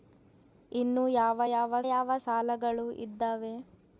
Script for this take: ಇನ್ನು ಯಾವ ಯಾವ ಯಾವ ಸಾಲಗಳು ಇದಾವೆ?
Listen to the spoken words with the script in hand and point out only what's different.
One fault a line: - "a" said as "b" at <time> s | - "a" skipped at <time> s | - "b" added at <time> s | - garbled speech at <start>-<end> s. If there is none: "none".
none